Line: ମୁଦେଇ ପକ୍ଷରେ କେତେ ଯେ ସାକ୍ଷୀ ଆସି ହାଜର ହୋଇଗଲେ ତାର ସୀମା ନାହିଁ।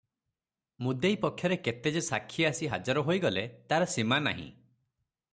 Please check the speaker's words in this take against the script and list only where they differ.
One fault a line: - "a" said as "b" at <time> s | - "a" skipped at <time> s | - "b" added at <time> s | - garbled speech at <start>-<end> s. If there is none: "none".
none